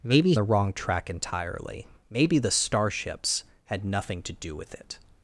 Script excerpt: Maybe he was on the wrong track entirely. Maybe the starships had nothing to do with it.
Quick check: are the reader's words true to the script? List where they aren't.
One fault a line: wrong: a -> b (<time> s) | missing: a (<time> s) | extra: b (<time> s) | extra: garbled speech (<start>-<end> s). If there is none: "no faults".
missing: he was on (0.3 s)